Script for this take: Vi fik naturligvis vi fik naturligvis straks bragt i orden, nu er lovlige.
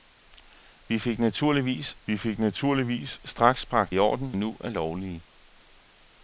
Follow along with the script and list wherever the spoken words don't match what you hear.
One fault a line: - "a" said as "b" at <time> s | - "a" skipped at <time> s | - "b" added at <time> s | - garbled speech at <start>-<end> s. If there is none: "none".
none